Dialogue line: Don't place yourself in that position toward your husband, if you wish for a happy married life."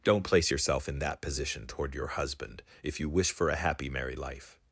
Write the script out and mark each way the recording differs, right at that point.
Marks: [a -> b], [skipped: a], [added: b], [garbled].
Don't place yourself in that position toward your husband, if you wish for a happy married life."